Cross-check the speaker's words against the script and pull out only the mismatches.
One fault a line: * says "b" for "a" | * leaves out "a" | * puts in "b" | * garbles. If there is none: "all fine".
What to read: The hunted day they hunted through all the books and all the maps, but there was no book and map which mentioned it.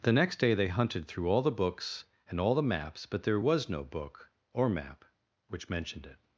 * says "next" for "hunted"
* says "or" for "and"